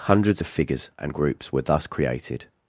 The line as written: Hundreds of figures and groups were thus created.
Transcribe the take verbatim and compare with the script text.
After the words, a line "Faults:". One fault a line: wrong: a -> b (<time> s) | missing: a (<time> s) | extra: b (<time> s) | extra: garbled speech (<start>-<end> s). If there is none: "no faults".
Hundreds of figures and groups were thus created.
Faults:
no faults